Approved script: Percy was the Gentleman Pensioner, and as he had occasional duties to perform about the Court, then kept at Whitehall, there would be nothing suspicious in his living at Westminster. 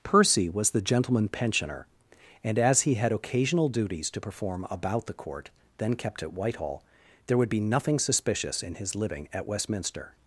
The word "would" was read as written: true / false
true